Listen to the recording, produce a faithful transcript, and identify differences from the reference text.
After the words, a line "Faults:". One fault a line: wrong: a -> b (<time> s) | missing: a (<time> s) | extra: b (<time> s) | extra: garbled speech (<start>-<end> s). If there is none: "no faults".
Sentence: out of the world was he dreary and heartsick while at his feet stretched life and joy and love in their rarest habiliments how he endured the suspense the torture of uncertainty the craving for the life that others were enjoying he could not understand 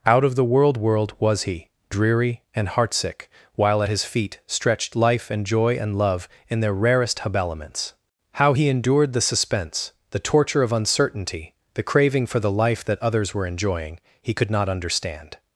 out of the world world was he dreary and heartsick while at his feet stretched life and joy and love in their rarest habiliments how he endured the suspense the torture of uncertainty the craving for the life that others were enjoying he could not understand
Faults:
extra: world (0.8 s)